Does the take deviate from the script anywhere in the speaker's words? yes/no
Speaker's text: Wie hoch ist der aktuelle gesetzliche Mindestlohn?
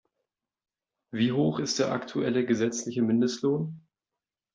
no